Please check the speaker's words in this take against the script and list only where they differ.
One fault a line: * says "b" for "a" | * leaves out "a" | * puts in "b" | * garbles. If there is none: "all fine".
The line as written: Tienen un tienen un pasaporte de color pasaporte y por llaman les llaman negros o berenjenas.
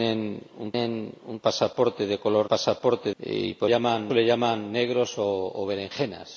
all fine